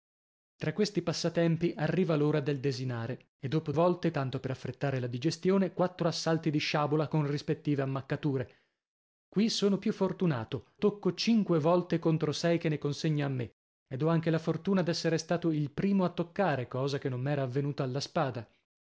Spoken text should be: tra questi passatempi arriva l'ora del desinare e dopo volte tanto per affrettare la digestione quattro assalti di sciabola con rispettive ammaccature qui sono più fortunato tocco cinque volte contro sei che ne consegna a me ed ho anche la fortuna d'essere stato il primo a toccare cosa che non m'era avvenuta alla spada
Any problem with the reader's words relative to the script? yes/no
no